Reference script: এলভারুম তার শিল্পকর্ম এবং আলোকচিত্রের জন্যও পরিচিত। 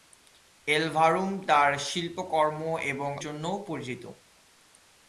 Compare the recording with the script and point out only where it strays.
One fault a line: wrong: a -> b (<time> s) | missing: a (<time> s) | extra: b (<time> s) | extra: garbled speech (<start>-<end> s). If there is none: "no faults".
missing: আলোকচিত্রের (3.1 s)